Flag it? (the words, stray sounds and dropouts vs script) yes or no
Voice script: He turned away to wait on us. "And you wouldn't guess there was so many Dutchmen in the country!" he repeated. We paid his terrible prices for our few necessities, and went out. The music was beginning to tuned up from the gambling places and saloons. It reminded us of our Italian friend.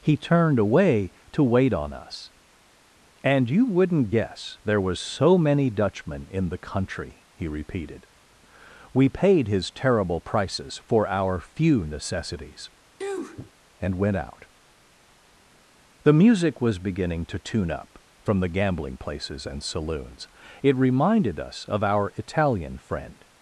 yes